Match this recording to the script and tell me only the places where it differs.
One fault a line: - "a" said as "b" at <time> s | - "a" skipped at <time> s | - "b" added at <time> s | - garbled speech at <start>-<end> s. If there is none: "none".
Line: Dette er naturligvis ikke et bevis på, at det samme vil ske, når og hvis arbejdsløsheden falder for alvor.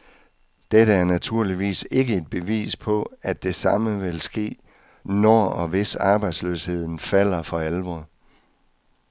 none